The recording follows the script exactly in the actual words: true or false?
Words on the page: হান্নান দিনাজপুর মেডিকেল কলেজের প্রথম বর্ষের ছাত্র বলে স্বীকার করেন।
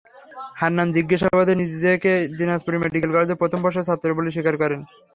false